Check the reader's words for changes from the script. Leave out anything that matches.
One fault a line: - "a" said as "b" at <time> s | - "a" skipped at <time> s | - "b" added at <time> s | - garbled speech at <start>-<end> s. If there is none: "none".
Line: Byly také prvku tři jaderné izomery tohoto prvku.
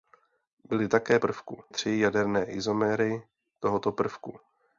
none